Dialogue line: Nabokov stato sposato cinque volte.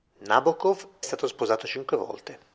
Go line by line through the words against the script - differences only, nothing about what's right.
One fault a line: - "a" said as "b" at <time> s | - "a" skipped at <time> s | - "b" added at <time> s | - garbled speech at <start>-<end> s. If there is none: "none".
none